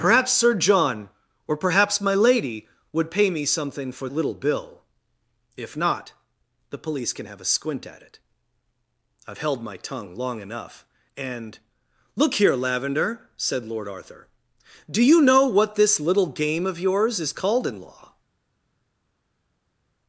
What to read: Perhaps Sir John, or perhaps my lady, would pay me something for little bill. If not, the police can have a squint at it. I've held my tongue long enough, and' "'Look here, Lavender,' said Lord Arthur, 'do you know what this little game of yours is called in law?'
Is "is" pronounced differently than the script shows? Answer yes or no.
no